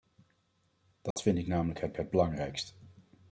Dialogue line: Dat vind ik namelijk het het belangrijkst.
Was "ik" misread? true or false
false